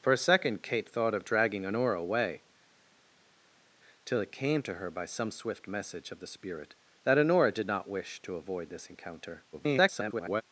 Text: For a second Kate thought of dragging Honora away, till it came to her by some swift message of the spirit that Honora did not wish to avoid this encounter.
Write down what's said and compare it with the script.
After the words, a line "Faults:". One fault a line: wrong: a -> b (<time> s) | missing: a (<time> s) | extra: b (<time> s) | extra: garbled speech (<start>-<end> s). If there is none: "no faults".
For a second Kate thought of dragging Honora away, till it came to her by some swift message of the spirit that Honora did not wish to avoid this encounter. [garbled]
Faults:
extra: garbled speech (9.5-10.4 s)